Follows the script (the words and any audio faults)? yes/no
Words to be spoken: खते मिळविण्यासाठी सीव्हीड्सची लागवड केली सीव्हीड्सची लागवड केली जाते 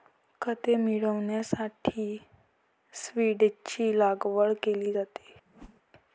no